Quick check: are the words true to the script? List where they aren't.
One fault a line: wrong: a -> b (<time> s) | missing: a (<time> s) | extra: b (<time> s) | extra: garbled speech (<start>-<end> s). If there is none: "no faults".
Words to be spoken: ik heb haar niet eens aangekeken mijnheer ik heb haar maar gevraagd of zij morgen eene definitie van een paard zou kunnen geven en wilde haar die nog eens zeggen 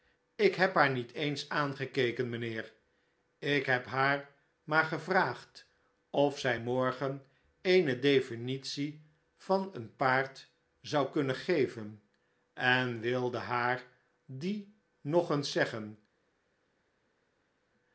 no faults